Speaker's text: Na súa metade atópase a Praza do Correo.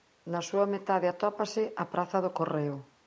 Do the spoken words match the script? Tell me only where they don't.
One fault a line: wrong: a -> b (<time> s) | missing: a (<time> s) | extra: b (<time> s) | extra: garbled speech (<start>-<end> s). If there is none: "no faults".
no faults